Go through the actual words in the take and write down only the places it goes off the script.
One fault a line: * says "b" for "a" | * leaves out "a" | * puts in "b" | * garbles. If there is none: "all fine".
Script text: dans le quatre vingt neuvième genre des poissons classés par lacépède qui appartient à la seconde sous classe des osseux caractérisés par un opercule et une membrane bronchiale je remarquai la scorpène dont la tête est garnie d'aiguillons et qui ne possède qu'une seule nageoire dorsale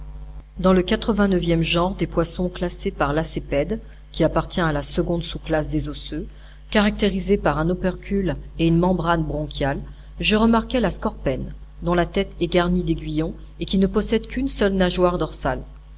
all fine